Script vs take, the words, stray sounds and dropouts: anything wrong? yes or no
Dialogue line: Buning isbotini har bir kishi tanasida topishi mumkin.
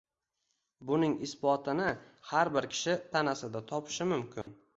yes